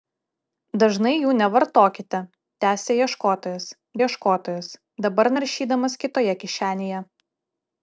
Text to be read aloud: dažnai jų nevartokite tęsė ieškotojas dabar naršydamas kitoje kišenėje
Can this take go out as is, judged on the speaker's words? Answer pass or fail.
fail